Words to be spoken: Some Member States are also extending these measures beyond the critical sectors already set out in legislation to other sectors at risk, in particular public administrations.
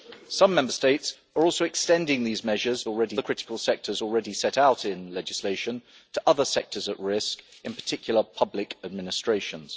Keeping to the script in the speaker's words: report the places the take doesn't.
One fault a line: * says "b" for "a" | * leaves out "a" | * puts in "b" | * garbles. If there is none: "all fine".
* says "already" for "beyond"